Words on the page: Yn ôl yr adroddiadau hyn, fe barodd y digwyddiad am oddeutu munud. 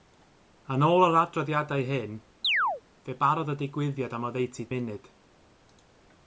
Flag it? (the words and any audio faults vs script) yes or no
yes